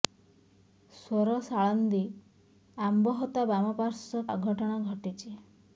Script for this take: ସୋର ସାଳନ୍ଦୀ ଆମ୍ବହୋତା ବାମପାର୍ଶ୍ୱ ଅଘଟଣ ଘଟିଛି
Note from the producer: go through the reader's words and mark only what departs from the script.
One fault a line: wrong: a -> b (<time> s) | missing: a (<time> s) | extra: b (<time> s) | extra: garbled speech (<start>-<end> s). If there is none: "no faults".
no faults